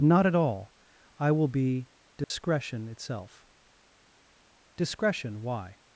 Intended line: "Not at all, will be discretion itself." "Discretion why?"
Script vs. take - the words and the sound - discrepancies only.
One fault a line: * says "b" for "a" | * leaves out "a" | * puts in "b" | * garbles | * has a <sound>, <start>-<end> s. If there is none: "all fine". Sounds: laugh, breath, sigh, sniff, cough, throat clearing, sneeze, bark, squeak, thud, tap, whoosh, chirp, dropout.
* puts in "I"
* has a dropout, 2.2-2.3 s